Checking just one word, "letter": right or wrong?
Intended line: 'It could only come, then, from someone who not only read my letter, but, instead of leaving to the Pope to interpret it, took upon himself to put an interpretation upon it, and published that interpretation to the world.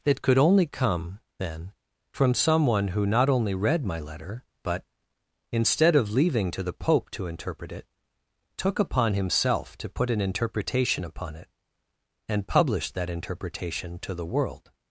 right